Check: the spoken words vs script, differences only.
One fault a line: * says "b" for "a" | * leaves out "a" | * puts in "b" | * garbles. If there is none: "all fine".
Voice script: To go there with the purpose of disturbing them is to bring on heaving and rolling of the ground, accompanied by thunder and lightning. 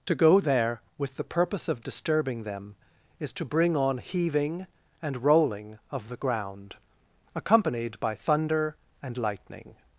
all fine